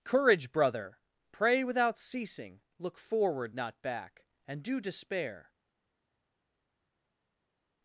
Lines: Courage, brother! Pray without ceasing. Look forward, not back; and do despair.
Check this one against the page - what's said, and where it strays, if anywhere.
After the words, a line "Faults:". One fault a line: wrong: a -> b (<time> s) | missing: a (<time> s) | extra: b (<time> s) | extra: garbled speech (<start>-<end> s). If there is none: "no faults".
Courage, brother! Pray without ceasing. Look forward, not back; and do despair.
Faults:
no faults